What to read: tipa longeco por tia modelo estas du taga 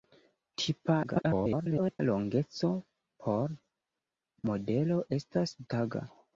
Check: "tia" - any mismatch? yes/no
yes